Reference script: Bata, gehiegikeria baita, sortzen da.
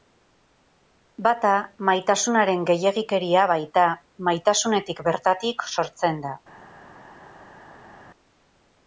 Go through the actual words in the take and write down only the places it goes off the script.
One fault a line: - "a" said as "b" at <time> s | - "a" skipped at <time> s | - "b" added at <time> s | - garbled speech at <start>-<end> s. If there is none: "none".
- "maitasunaren" added at 1.9 s
- "maitasunetik bertatik" added at 4.3 s